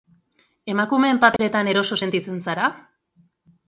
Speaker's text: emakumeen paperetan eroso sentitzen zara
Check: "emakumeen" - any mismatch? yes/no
no